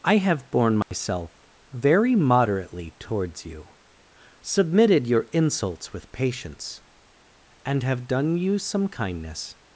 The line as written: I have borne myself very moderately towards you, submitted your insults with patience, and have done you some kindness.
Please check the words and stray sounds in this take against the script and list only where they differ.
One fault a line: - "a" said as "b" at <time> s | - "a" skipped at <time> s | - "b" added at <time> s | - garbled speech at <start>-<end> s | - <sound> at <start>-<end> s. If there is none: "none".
- dropout at 0.8-0.9 s